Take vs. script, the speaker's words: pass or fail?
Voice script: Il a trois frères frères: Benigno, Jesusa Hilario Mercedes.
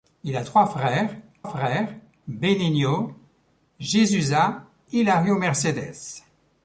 pass